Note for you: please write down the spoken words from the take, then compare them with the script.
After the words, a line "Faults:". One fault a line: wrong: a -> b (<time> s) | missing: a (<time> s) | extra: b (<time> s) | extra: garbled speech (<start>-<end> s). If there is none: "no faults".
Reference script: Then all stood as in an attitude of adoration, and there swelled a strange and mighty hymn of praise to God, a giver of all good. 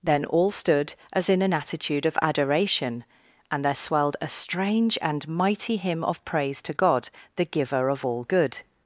Then all stood as in an attitude of adoration, and there swelled a strange and mighty hymn of praise to God, the giver of all good.
Faults:
wrong: a -> the (7.3 s)